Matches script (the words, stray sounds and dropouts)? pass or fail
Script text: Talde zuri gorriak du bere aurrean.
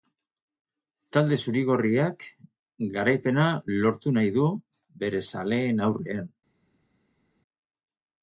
fail